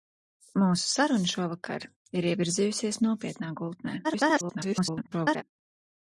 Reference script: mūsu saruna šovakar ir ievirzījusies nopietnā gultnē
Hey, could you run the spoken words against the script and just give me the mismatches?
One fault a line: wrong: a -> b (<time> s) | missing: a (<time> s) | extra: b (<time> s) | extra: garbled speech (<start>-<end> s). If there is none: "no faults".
extra: garbled speech (4.0-5.4 s)